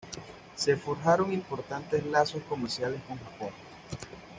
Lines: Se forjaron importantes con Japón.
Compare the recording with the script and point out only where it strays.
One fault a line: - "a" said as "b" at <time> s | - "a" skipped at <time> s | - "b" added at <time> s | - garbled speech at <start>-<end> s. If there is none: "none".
- "lazos comerciales" added at 2.1 s